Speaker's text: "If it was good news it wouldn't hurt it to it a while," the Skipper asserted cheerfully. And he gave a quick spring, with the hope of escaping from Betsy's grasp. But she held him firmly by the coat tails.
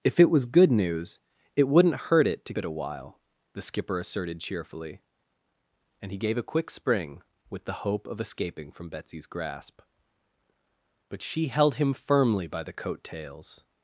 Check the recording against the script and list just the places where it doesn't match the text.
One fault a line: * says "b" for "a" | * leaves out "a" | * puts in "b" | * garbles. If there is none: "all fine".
all fine